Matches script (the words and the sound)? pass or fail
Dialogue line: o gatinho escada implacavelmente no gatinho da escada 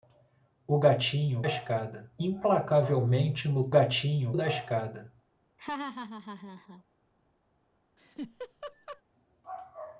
fail